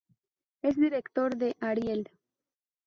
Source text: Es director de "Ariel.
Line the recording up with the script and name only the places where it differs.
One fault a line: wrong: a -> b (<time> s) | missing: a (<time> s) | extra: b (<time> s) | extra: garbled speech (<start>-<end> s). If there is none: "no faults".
no faults